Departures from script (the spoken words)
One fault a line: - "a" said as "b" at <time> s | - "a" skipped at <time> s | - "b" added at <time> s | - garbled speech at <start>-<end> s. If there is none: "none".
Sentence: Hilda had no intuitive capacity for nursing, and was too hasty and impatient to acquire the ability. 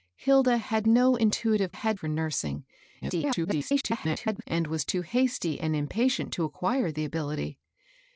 - "capacity" said as "had" at 1.7 s
- garbled speech at 3.0-4.4 s